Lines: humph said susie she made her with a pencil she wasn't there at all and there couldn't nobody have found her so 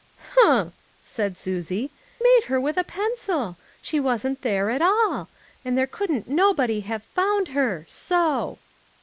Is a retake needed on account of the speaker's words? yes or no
yes